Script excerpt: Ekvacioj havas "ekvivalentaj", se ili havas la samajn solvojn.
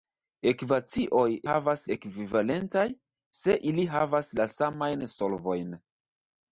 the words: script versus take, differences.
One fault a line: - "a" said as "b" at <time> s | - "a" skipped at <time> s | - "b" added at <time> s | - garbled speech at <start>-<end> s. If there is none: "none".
none